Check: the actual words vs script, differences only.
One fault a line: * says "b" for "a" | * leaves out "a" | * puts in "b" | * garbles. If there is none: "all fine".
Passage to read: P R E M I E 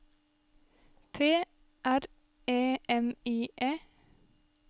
all fine